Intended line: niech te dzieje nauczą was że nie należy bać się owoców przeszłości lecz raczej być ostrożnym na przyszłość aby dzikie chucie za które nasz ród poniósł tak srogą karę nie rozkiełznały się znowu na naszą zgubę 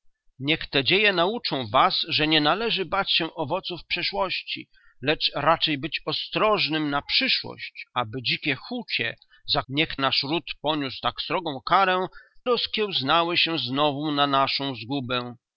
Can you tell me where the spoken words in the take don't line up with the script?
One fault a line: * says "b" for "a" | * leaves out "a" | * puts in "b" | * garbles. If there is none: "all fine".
* says "niech" for "które"
* leaves out "nie"